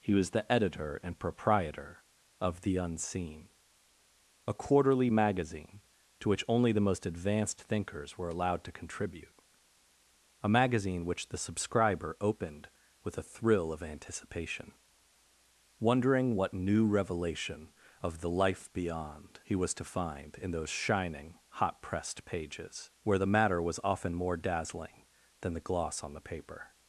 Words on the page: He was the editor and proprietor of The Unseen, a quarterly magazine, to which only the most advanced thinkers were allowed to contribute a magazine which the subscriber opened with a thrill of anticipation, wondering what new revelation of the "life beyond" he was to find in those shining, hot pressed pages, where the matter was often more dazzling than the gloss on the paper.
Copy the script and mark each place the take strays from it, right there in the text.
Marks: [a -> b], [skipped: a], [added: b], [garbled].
He was the editor and proprietor of The Unseen, a quarterly magazine, to which only the most advanced thinkers were allowed to contribute a magazine which the subscriber opened with a thrill of anticipation, wondering what new revelation of the "life beyond" he was to find in those shining, hot pressed pages, where the matter was often more dazzling than the gloss on the paper.